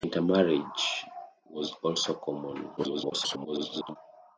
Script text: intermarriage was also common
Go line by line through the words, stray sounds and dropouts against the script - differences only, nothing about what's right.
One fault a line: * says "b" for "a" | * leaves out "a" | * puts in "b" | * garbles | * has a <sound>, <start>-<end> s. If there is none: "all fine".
* garbles